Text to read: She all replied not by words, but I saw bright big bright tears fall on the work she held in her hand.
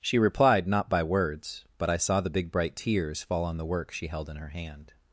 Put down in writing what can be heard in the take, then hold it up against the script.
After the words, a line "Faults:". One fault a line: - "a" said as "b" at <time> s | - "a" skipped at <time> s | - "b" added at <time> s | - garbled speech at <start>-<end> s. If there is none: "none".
She replied not by words, but I saw the big bright tears fall on the work she held in her hand.
Faults:
- "all" skipped at 0.2 s
- "bright" said as "the" at 2.2 s